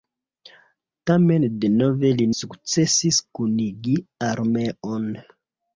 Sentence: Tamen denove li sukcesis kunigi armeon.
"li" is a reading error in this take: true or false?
false